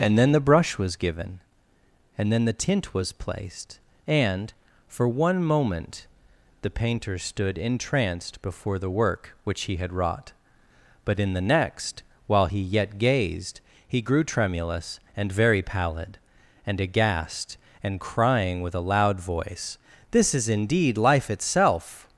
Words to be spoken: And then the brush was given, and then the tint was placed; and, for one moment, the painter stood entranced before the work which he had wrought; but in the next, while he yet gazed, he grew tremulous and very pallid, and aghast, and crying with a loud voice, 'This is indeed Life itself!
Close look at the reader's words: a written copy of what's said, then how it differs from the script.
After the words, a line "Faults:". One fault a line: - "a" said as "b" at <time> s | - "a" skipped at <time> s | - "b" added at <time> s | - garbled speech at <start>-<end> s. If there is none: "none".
And then the brush was given, and then the tint was placed; and, for one moment, the painter stood entranced before the work which he had wrought; but in the next, while he yet gazed, he grew tremulous and very pallid, and aghast, and crying with a loud voice, 'This is indeed Life itself!
Faults:
none